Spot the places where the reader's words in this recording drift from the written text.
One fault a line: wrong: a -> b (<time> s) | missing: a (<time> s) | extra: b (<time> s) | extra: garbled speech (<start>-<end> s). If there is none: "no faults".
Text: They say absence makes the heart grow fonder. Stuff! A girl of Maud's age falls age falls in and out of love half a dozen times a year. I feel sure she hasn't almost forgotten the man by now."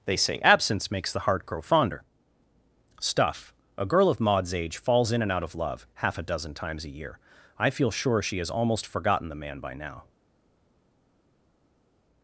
missing: age falls (5.1 s)
wrong: hasn't -> has (8.4 s)